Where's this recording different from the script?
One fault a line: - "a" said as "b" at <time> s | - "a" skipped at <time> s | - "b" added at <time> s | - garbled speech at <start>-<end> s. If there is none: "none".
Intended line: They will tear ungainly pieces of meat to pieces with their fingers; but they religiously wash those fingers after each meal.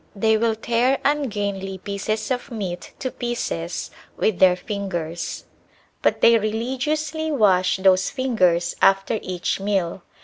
none